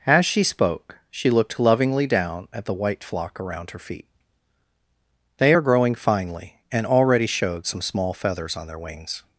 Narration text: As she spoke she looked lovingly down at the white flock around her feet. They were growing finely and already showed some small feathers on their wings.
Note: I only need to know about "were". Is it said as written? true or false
false